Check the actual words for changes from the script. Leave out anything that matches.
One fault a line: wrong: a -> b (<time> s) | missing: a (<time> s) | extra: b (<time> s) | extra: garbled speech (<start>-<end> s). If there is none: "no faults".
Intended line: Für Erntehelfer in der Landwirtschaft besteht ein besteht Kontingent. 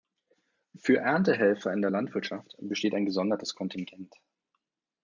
wrong: besteht -> gesondertes (3.0 s)